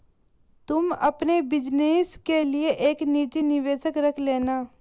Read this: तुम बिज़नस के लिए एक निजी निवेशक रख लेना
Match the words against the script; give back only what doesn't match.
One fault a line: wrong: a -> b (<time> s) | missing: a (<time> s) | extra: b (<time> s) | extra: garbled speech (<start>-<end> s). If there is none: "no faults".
extra: अपने (0.9 s)